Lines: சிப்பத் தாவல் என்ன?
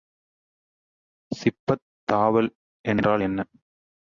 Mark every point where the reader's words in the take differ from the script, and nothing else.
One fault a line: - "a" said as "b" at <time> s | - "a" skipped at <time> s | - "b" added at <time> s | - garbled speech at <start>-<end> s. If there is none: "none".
- "என்றால்" added at 2.8 s